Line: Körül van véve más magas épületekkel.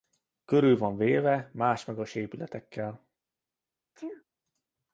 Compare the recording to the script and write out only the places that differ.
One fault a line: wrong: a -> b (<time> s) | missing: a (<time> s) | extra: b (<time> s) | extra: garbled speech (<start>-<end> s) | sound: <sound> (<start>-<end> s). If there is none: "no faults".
sound: sneeze (3.9-4.2 s)